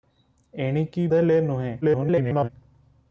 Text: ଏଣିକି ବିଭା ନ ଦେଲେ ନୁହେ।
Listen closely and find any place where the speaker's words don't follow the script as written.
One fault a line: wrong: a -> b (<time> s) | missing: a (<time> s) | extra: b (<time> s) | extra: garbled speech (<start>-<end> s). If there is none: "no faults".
missing: ବିଭା ନ (1.1 s)
extra: garbled speech (1.8-2.5 s)